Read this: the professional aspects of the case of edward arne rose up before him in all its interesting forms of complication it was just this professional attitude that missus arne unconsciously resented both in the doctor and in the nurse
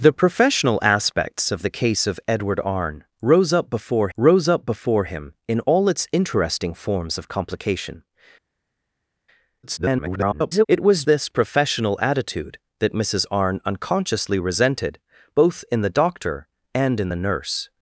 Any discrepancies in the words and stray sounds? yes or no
yes